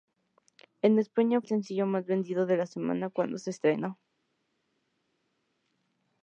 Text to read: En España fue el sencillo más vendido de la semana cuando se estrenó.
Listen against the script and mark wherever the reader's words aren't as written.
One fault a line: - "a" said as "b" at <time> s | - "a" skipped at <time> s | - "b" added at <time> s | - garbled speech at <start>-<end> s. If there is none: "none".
- "fue" skipped at 1.4 s